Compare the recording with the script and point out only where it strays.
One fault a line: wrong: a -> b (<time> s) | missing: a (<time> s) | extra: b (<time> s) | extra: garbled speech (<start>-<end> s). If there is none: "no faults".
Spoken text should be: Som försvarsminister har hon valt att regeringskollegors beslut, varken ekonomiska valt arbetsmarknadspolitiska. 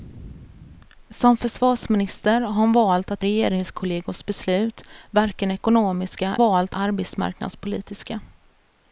no faults